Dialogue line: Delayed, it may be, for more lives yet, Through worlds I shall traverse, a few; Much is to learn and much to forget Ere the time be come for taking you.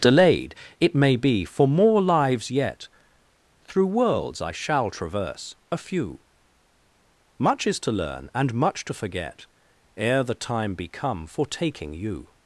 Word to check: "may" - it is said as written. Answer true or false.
true